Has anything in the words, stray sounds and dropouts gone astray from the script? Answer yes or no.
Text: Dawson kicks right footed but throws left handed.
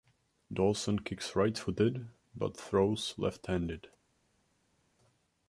no